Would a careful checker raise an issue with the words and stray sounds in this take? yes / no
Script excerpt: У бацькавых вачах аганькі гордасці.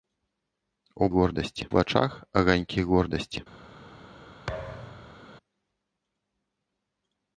yes